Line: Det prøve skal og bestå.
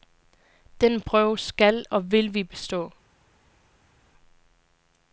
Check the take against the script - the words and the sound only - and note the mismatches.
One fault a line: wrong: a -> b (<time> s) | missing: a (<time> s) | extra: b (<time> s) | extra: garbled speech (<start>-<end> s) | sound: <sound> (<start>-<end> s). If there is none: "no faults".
wrong: Det -> Den (0.8 s)
extra: vil vi (2.1 s)